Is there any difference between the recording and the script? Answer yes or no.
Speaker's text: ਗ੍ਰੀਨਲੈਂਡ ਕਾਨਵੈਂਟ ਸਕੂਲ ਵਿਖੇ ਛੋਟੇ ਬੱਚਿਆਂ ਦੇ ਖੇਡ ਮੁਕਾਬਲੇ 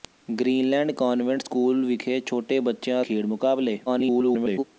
yes